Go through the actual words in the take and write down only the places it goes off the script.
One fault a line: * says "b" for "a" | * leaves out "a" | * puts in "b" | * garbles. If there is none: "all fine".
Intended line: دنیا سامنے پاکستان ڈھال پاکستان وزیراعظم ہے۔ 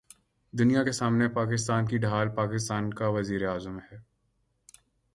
* puts in "کے"
* puts in "کی"
* puts in "کا"